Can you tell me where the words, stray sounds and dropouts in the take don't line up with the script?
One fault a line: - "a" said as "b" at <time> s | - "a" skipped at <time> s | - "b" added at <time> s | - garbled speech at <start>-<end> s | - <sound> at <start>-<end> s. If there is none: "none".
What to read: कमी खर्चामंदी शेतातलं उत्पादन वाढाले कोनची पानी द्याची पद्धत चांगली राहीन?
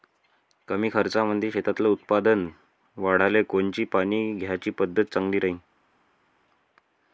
none